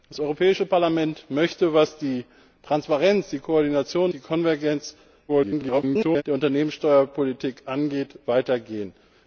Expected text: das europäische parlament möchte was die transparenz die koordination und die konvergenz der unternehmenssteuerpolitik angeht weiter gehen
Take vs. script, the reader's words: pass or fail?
fail